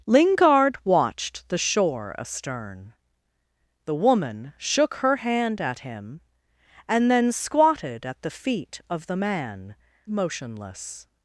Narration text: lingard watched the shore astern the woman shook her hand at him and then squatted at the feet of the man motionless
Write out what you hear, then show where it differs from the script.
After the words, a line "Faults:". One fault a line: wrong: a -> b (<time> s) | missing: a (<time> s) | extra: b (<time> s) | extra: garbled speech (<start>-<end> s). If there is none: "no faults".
lingard watched the shore astern the woman shook her hand at him and then squatted at the feet of the man motionless
Faults:
no faults